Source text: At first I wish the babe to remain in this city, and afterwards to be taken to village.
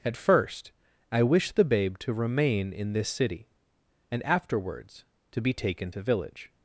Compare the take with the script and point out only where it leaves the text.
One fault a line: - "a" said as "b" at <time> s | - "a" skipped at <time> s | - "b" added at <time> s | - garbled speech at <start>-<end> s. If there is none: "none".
none